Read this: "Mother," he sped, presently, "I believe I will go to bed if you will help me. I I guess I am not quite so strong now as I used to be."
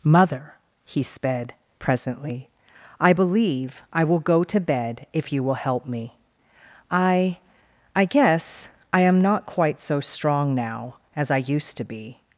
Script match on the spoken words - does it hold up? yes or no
yes